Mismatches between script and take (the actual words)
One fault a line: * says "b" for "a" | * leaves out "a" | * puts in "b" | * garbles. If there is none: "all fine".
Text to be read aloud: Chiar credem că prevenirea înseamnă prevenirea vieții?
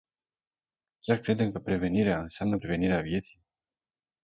all fine